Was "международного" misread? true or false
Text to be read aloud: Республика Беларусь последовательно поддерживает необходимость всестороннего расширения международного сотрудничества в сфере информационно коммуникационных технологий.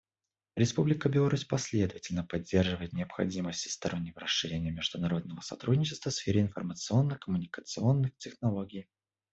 false